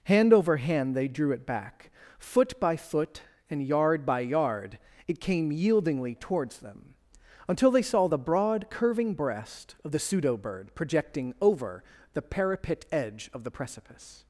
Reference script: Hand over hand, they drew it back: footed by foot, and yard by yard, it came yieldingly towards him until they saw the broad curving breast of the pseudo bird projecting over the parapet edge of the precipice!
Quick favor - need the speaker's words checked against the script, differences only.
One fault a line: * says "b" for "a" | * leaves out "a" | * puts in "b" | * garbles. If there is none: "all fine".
* says "foot" for "footed"
* says "them" for "him"